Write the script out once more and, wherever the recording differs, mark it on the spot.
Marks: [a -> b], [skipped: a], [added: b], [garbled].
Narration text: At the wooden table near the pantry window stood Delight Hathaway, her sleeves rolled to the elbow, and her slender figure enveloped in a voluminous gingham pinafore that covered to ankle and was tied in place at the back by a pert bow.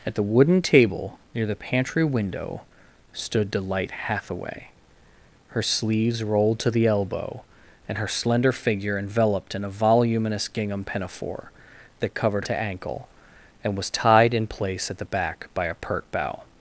At the wooden table near the pantry window stood Delight Hathaway, her sleeves rolled to the elbow, and her slender figure enveloped in a voluminous gingham pinafore that covered to ankle and was tied in place at the back by a pert bow.